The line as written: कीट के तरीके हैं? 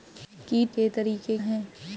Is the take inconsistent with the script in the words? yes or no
no